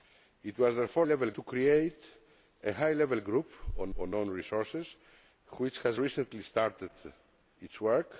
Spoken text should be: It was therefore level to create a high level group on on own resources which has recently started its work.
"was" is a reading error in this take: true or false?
false